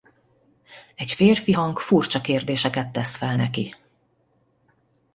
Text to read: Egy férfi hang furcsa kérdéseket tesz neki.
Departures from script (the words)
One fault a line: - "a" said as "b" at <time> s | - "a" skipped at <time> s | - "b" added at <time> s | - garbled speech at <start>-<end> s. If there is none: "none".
- "fel" added at 3.2 s